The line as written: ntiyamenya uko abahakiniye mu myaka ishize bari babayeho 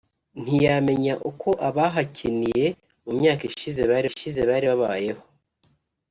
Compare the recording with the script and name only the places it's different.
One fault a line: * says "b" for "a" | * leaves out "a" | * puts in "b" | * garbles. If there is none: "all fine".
* puts in "ishize bari"